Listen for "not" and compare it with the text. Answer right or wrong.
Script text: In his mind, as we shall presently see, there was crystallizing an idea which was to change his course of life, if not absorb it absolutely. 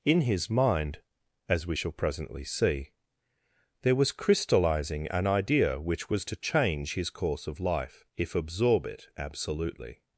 wrong